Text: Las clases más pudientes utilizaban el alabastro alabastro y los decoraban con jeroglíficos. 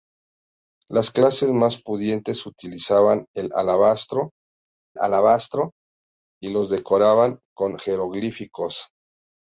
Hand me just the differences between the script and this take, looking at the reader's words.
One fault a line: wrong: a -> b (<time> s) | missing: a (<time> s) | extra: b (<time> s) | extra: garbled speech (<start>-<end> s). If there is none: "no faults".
no faults